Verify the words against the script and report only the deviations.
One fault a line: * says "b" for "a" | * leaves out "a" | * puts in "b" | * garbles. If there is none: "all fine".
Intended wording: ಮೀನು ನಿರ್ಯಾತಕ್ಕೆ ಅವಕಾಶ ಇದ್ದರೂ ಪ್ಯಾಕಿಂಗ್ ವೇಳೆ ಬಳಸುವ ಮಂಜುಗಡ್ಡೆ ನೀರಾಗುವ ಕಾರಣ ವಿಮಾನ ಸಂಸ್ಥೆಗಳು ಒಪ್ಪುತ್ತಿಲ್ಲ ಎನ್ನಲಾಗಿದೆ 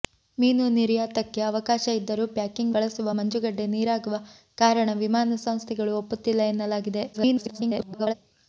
* leaves out "ವೇಳೆ"
* garbles